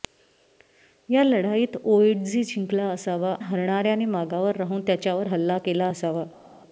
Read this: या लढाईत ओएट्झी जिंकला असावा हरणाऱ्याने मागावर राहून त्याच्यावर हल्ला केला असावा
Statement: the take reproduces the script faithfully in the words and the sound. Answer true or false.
true